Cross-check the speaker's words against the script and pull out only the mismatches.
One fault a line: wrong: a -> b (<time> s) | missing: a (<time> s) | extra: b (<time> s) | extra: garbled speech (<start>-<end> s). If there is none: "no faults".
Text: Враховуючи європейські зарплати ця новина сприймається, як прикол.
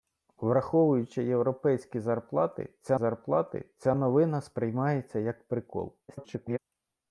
extra: зарплати ця (2.9 s)
extra: garbled speech (6.1-6.6 s)